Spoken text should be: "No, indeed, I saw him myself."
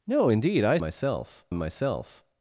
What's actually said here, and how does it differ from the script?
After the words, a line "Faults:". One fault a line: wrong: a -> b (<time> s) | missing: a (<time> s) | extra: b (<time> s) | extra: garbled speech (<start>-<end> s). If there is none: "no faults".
"No, indeed, I myself him myself."
Faults:
wrong: saw -> myself (0.8 s)